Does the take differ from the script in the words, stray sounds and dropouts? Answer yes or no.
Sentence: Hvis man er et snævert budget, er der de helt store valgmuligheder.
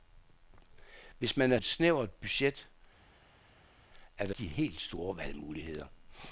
no